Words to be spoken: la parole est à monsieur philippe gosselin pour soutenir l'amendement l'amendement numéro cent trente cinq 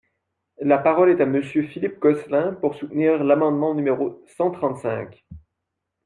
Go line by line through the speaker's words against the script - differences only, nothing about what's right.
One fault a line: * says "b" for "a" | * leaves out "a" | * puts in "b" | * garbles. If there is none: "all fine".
* leaves out "l'amendement"